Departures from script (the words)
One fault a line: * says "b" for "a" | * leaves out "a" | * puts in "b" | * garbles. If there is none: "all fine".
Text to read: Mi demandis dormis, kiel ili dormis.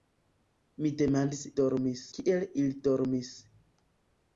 all fine